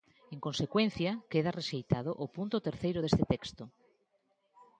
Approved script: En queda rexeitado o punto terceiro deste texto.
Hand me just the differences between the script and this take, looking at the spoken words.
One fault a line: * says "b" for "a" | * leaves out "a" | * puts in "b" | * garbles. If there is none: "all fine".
* puts in "consecuencia"